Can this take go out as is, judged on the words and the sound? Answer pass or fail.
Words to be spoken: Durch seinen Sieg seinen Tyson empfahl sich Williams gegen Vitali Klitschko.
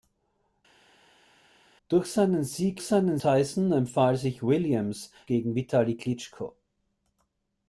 pass